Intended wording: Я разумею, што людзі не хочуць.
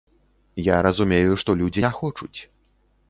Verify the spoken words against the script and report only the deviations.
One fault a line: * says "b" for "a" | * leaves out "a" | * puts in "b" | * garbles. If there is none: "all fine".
all fine